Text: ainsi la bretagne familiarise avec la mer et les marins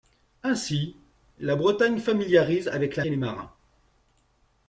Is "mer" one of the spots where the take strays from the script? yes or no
yes